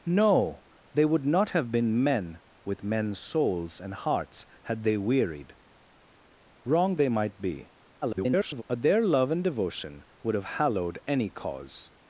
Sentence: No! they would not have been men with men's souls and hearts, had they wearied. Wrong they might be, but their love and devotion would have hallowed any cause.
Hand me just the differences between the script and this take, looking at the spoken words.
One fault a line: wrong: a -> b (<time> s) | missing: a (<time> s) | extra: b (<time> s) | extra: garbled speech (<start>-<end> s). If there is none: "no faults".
extra: garbled speech (8.0-8.6 s)